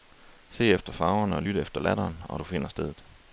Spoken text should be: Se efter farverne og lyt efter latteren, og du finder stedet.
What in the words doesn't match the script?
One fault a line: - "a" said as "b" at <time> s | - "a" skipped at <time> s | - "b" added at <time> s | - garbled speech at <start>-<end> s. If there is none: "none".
none